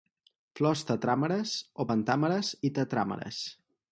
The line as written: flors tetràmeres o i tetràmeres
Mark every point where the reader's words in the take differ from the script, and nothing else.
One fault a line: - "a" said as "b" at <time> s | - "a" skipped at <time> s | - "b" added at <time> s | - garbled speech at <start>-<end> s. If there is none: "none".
- "pentàmeres" added at 1.9 s